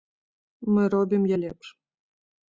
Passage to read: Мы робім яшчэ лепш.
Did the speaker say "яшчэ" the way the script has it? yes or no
no